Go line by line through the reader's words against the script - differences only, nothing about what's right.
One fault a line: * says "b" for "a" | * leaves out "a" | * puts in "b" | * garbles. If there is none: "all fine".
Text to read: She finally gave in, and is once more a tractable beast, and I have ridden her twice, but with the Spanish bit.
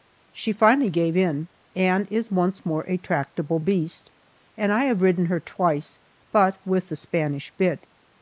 all fine